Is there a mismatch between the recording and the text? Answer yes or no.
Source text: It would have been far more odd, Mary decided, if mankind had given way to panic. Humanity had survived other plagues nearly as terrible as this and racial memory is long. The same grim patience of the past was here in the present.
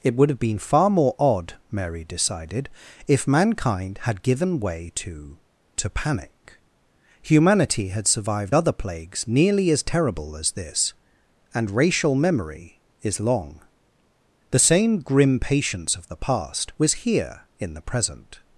yes